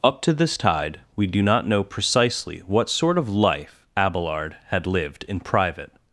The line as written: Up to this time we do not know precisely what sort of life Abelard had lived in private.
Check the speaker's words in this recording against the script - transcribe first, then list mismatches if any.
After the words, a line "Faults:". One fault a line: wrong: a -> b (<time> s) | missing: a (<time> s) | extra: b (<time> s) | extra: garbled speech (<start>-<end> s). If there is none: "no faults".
Up to this tide we do not know precisely what sort of life Abelard had lived in private.
Faults:
wrong: time -> tide (0.5 s)